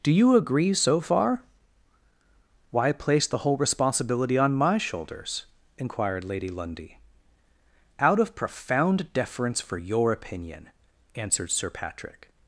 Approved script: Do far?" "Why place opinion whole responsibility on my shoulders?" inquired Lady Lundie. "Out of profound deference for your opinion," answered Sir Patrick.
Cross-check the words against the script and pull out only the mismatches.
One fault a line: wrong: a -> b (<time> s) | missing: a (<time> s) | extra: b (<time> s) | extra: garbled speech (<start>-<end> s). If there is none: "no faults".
extra: you agree so (0.1 s)
wrong: opinion -> the (3.3 s)